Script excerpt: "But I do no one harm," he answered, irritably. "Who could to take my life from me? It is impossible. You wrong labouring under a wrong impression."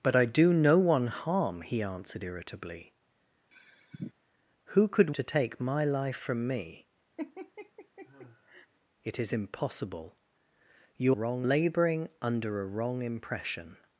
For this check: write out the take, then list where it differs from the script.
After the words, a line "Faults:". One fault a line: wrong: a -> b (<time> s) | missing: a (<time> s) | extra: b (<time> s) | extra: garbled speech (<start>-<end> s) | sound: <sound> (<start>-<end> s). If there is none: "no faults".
"But I do no one harm," he answered, irritably. "Who could to take my life from me? It is impossible. You wrong labouring under a wrong impression."
Faults:
sound: sigh (3.5-4.1 s)
sound: laugh (7.2-8.7 s)